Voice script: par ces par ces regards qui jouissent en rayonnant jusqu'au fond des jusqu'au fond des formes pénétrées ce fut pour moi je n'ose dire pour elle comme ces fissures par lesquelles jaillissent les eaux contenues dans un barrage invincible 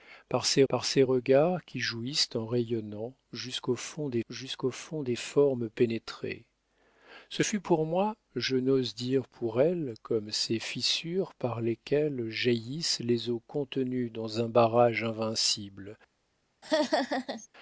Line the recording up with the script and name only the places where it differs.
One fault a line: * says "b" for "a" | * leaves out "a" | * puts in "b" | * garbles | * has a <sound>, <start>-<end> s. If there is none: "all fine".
* has a laugh, 16.6-17.5 s